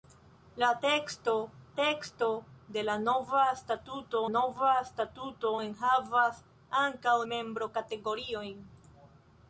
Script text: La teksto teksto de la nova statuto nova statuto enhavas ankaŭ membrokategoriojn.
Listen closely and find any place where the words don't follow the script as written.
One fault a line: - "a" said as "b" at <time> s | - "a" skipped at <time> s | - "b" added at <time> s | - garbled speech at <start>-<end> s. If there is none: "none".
none